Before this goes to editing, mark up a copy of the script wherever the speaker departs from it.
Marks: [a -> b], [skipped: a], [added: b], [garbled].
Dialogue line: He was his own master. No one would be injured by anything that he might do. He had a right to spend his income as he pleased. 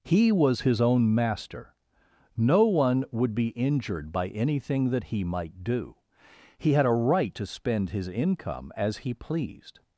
He was his own master. No one would be injured by anything that he might do. He had a right to spend his income as he pleased.